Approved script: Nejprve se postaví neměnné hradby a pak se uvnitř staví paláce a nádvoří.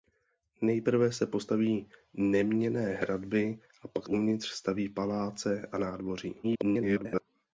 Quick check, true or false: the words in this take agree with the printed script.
false